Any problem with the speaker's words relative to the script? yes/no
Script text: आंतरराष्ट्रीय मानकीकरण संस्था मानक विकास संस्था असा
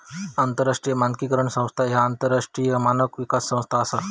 yes